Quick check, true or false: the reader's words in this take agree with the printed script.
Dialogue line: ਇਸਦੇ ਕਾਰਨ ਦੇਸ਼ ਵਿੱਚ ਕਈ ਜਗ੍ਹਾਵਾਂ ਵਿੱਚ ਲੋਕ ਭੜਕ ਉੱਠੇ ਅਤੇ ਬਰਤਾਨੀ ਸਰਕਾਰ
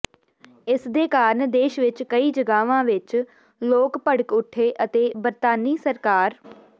true